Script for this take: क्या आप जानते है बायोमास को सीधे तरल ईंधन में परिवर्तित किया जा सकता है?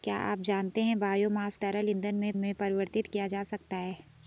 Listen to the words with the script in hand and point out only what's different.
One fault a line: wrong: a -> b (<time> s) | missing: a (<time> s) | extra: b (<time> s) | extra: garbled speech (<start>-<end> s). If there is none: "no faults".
missing: को सीधे (1.6 s)
extra: में (2.4 s)